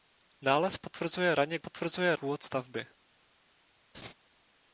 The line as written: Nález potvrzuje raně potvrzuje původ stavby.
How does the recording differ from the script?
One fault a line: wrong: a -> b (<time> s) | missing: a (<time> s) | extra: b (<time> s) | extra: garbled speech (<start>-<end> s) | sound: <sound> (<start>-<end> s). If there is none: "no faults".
sound: laugh (3.9-4.1 s)